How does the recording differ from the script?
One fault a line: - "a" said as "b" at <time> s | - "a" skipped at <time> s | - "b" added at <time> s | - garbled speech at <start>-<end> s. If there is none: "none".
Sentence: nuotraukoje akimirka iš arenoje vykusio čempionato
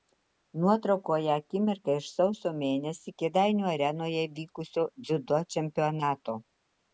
- "sausio mėnesį kėdainių" added at 2.1 s
- "dziudo" added at 5.1 s